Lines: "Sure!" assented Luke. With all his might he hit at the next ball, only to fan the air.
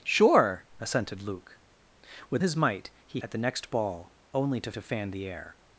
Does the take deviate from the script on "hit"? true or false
true